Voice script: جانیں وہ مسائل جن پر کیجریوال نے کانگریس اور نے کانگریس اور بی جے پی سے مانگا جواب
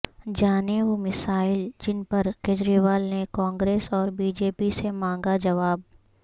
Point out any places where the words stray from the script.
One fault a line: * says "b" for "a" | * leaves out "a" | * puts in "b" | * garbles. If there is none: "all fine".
* leaves out "نے کانگریس اور"